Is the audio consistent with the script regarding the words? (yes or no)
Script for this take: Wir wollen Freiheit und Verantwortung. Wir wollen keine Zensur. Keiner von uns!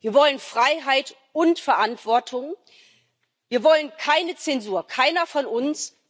yes